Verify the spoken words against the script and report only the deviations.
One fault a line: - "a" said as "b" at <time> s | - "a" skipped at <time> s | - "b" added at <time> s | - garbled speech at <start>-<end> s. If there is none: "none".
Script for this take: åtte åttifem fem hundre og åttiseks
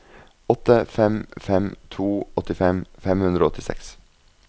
- "fem fem to" added at 0.8 s